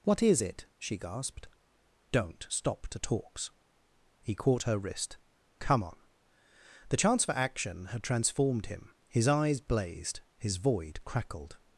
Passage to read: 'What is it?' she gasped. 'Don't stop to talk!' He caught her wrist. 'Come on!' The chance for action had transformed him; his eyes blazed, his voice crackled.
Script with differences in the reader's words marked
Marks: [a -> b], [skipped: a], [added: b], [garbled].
'What is it?' she gasped. 'Don't stop to [talk!' -> talks] He caught her wrist. 'Come on!' The chance for action had transformed him; his eyes blazed, his [voice -> void] crackled.